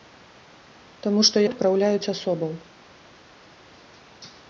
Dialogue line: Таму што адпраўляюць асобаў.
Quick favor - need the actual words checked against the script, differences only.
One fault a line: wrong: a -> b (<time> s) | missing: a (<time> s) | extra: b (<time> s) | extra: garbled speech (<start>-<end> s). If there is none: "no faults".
no faults